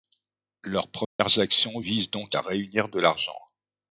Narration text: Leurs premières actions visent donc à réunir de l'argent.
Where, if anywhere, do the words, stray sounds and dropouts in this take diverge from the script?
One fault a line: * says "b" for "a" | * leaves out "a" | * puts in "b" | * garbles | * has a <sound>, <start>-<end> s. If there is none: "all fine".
* has a dropout, 1.0-1.2 s